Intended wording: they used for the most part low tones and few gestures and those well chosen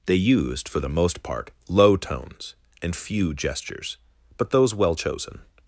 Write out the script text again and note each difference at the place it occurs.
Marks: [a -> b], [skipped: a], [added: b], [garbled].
they used for the most part low tones and few gestures [and -> but] those well chosen